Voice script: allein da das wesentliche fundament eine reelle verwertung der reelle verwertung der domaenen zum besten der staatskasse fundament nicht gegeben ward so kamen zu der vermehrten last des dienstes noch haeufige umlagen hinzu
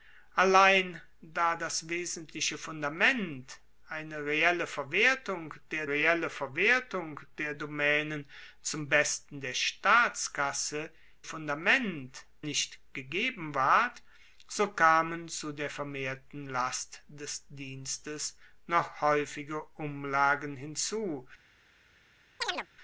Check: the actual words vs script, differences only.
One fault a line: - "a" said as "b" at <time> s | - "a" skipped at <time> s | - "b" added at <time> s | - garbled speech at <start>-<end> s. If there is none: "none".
none